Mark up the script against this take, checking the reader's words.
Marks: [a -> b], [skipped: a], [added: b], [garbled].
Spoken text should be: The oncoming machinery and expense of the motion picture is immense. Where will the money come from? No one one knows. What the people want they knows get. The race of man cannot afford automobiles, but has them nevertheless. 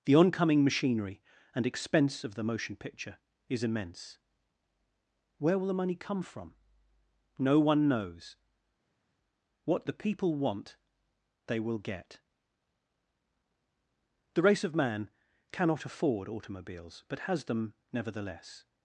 The oncoming machinery and expense of the motion picture is immense. Where will the money come from? No one [skipped: one] knows. What the people want they [knows -> will] get. The race of man cannot afford automobiles, but has them nevertheless.